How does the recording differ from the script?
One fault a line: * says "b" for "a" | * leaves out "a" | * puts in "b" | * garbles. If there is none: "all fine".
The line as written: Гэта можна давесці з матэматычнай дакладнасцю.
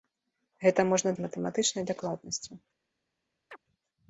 * leaves out "давесці"